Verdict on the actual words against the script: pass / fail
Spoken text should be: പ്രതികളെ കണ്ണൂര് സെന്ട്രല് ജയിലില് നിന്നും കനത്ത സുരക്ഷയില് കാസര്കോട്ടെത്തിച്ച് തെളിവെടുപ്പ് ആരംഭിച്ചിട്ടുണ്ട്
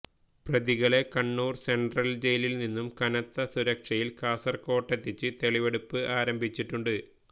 pass